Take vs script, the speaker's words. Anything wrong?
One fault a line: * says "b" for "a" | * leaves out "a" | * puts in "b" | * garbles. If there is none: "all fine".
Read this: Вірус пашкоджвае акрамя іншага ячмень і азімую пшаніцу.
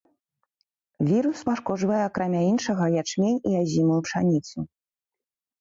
all fine